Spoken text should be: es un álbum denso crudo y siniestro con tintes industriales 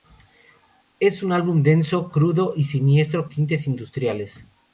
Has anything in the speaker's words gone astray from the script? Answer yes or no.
yes